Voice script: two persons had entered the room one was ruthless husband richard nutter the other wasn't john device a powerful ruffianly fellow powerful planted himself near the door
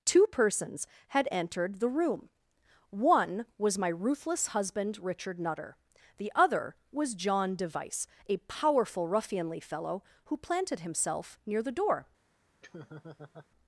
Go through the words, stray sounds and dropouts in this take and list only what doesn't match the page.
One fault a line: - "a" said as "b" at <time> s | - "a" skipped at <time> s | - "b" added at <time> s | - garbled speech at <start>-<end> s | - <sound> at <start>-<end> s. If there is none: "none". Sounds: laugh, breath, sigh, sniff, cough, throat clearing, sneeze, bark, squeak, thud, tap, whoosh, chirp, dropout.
- "my" added at 3.8 s
- "wasn't" said as "was" at 6.9 s
- "powerful" said as "who" at 10.2 s
- laugh at 12.6-13.5 s